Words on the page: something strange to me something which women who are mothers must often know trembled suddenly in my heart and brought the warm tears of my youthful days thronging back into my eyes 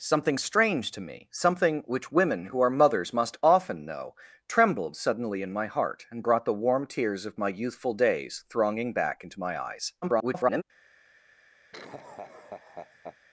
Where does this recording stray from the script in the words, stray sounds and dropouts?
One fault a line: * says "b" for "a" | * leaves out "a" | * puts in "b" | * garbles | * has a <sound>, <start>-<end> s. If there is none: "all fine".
* garbles
* has a laugh, 11.7-13.2 s